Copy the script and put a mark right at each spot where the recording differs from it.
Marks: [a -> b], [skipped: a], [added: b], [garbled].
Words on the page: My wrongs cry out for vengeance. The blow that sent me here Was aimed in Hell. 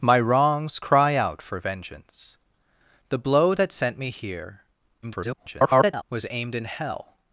My wrongs cry out for vengeance. The blow that sent me here [garbled] Was aimed in Hell.